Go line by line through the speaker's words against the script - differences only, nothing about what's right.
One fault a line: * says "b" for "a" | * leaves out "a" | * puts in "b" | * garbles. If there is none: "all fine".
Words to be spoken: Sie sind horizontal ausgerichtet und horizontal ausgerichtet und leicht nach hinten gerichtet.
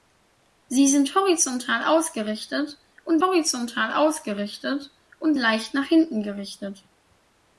all fine